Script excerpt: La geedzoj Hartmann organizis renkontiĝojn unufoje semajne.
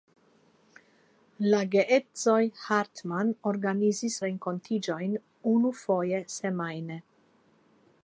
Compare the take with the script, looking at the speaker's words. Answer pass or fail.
pass